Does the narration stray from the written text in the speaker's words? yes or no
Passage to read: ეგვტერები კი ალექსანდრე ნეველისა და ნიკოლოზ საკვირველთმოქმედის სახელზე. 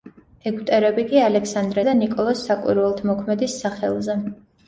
yes